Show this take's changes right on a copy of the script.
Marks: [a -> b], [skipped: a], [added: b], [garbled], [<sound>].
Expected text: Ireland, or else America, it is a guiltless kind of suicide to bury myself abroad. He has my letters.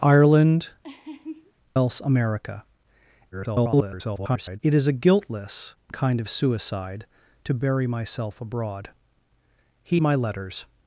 Ireland, [skipped: or] [laugh] else America, [garbled] it is a guiltless kind of suicide to bury myself abroad. He [skipped: has] my letters.